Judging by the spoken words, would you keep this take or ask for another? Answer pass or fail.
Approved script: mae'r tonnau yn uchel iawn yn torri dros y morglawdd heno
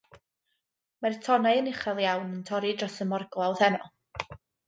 pass